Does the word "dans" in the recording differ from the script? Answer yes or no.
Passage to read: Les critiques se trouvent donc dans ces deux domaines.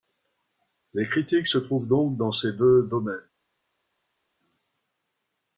no